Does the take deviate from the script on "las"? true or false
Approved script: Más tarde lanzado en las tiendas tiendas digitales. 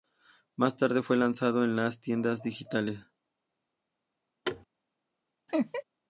false